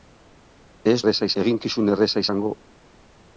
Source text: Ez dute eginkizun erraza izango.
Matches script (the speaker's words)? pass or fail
fail